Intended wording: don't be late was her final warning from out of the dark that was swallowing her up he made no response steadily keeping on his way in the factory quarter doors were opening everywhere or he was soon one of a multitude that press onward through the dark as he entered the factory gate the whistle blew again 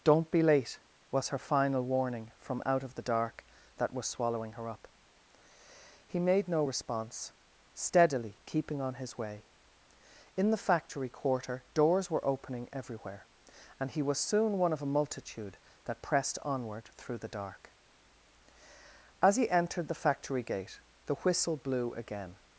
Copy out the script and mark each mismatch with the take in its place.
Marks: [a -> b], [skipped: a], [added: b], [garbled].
don't be late was her final warning from out of the dark that was swallowing her up he made no response steadily keeping on his way in the factory quarter doors were opening everywhere [or -> and] he was soon one of a multitude that [press -> pressed] onward through the dark as he entered the factory gate the whistle blew again